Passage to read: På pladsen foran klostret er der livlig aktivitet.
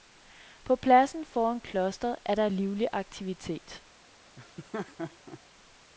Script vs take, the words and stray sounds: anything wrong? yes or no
yes